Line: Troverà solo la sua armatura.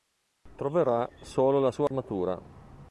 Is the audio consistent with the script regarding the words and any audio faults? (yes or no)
no